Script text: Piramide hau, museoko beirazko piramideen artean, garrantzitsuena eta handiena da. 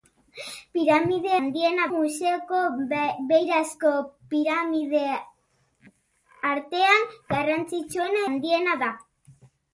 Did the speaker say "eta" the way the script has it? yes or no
no